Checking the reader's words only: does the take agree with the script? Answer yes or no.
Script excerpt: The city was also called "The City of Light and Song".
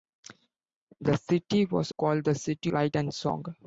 no